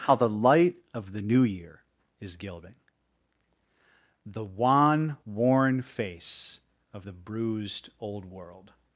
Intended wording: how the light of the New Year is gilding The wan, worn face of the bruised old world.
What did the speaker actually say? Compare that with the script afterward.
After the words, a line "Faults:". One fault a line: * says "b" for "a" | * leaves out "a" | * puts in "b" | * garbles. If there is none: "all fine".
how the light of the New Year is gilding The wan, worn face of the bruised old world.
Faults:
all fine